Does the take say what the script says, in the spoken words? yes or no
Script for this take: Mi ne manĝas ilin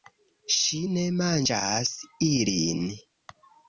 no